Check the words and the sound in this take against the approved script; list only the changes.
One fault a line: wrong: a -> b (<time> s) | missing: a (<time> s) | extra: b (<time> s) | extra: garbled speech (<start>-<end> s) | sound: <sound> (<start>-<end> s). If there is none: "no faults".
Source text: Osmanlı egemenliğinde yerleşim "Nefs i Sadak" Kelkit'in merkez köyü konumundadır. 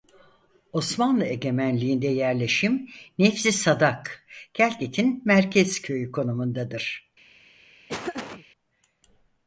sound: laugh (7.9-8.5 s)